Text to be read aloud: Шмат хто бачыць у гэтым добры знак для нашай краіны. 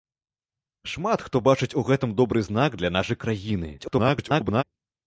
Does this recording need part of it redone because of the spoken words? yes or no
yes